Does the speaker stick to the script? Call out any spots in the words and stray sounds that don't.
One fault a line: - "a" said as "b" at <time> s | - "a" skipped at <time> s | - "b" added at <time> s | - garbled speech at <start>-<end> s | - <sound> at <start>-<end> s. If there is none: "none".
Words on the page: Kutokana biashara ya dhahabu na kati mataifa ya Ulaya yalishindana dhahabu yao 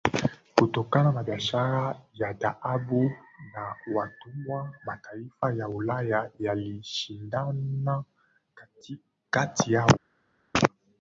- "na" added at 1.1 s
- "kati" said as "watumwa" at 4.0 s
- "dhahabu" said as "kati" at 9.3 s